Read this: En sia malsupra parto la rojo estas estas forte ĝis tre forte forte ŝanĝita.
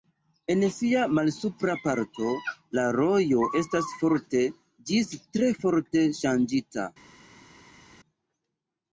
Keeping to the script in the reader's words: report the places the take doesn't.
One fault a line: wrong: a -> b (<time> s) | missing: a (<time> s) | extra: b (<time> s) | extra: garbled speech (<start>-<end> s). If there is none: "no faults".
missing: estas (3.9 s)
missing: forte (6.1 s)